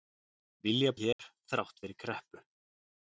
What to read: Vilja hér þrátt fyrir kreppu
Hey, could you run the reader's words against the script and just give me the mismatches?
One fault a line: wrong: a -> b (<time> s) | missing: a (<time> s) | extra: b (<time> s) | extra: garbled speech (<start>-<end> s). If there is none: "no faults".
no faults